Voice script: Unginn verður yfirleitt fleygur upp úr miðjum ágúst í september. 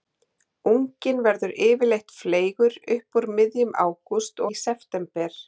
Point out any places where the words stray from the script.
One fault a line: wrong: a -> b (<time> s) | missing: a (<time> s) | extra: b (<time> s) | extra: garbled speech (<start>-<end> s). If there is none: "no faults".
no faults